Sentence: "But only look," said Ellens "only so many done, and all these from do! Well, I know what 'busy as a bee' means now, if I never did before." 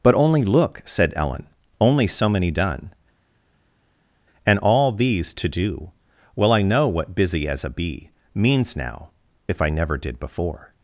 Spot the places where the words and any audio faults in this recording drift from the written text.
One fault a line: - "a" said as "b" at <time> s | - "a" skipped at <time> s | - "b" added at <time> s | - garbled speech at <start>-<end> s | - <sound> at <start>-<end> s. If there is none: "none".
- "Ellens" said as "Ellen" at 1.1 s
- "from" said as "to" at 5.3 s